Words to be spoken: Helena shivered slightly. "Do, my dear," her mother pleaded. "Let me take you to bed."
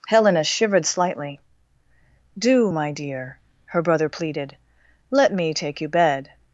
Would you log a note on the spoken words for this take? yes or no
yes